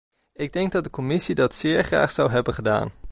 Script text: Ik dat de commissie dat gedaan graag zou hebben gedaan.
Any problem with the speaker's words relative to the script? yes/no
yes